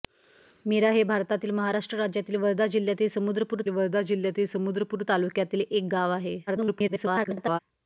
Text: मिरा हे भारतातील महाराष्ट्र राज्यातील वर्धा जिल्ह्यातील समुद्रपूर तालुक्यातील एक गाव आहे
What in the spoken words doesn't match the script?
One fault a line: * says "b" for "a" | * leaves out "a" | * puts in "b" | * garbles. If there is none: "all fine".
* puts in "वर्धा जिल्ह्यातील समुद्रपूर"
* garbles